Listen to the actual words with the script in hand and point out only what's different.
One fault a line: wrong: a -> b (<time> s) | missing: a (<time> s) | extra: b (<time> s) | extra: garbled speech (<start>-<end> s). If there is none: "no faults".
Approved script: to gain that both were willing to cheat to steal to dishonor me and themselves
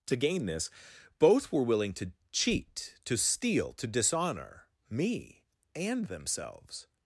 wrong: that -> this (0.5 s)